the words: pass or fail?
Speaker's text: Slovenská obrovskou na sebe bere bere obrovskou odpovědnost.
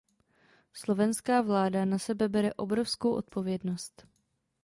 fail